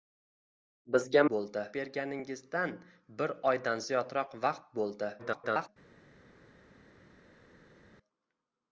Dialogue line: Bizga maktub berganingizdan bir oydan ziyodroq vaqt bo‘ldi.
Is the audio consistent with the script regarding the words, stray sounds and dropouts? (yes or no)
no